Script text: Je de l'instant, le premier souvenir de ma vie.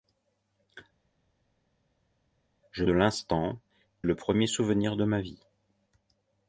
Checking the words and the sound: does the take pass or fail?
pass